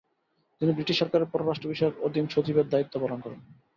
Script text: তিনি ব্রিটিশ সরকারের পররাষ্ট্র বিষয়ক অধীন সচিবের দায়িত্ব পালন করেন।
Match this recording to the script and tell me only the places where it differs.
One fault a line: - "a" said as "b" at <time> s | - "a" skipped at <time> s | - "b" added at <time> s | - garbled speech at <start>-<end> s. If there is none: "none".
none